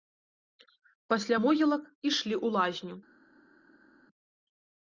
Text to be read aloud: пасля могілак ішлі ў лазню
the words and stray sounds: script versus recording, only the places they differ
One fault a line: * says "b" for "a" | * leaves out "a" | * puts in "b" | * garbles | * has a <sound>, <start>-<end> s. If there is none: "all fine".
all fine